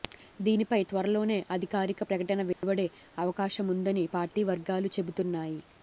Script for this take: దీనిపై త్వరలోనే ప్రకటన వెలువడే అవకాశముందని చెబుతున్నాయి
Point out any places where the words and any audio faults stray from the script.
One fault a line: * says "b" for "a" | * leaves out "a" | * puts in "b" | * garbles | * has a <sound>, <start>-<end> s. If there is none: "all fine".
* puts in "అధికారిక"
* has a dropout, 2.5-2.6 s
* puts in "పార్టీ వర్గాలు"